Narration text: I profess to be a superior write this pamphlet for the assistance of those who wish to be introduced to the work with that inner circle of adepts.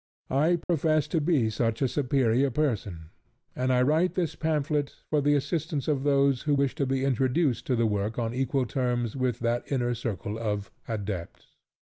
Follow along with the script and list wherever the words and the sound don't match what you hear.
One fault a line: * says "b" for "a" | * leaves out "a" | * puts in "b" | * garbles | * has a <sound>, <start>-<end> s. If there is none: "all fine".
* has a dropout, 0.6-0.7 s
* puts in "such"
* puts in "person and I"
* puts in "on equal terms"